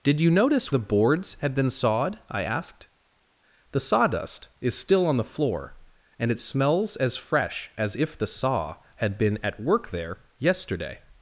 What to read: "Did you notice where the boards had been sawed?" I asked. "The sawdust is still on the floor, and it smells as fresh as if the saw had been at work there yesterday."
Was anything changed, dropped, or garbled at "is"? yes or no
no